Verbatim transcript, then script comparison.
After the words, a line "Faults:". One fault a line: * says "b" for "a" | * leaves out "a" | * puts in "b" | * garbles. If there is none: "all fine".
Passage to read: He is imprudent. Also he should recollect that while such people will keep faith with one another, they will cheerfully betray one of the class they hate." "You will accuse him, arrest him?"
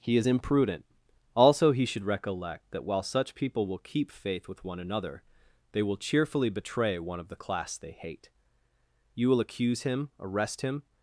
He is imprudent. Also he should recollect that while such people will keep faith with one another, they will cheerfully betray one of the class they hate." "You will accuse him, arrest him?"
Faults:
all fine